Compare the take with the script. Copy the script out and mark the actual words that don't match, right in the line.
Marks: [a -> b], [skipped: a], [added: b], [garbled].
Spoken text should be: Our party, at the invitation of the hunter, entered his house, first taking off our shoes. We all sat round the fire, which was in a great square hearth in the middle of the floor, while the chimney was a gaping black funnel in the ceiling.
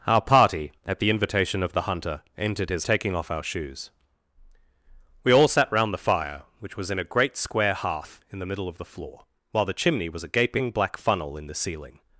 Our party, at the invitation of the hunter, entered his [skipped: house, first] taking off our shoes. We all sat round the fire, which was in a great square hearth in the middle of the floor, while the chimney was a gaping black funnel in the ceiling.